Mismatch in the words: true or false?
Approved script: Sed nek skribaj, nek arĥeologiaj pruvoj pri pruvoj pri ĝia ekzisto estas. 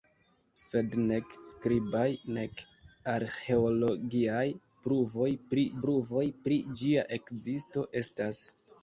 false